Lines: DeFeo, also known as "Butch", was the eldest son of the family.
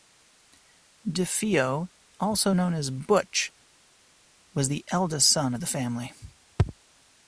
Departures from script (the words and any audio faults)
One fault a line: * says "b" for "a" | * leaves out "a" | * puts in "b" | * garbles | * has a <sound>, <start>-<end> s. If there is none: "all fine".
all fine